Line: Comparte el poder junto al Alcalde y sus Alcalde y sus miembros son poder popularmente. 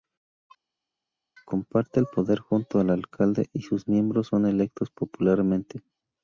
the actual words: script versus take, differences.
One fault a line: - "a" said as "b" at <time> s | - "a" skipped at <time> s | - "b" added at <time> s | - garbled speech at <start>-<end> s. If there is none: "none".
- "Alcalde y sus" skipped at 3.9 s
- "poder" said as "electos" at 4.5 s